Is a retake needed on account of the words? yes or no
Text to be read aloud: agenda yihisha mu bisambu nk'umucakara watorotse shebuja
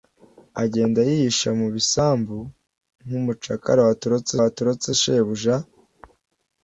yes